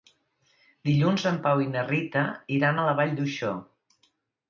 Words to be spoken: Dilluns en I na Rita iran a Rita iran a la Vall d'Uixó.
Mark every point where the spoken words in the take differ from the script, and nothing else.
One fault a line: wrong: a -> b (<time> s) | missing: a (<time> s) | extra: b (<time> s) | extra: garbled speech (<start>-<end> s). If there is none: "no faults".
extra: Pau (1.4 s)
missing: Rita iran a (2.9 s)